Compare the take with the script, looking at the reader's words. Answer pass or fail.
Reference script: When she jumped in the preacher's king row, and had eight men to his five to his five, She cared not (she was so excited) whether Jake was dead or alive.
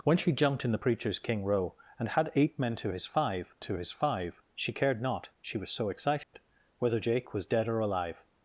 pass